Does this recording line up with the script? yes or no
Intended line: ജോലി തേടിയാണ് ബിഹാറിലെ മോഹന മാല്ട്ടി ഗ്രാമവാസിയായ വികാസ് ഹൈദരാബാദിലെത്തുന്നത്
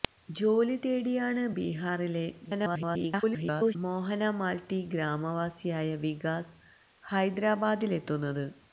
no